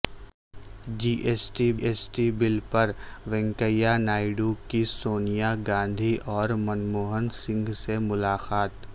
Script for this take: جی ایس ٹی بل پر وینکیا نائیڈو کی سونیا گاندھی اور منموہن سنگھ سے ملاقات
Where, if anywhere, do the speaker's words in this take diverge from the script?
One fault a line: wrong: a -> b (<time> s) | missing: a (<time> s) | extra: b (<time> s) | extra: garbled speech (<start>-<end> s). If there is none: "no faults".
extra: ایس ٹی (1.8 s)